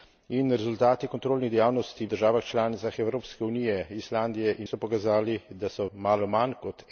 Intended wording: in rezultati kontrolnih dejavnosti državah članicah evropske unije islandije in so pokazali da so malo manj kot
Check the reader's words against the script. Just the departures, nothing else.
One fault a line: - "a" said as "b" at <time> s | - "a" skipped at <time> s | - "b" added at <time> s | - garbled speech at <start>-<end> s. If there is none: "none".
none